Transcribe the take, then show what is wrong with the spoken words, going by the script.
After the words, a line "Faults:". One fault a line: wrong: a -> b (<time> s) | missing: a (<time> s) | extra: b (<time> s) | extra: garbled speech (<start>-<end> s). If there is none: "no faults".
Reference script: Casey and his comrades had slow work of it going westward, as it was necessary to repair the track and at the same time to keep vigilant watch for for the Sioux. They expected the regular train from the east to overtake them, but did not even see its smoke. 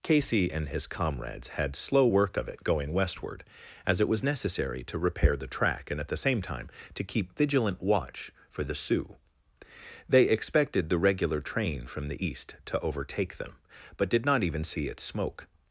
Casey and his comrades had slow work of it going westward, as it was necessary to repair the track and at the same time to keep vigilant watch for the Sioux. They expected the regular train from the east to overtake them, but did not even see its smoke.
Faults:
missing: for (8.6 s)